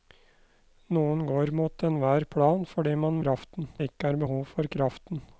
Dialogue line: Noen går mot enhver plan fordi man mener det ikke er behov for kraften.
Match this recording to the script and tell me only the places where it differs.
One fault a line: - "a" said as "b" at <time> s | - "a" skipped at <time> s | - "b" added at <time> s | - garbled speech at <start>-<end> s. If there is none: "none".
- "mener" said as "kraften" at 3.2 s